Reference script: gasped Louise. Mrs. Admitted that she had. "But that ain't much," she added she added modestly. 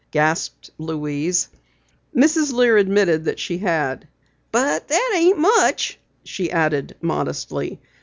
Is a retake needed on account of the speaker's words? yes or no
yes